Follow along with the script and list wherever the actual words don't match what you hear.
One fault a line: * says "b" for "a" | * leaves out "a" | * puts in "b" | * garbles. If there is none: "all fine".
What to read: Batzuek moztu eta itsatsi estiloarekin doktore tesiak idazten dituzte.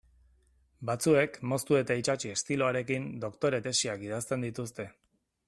all fine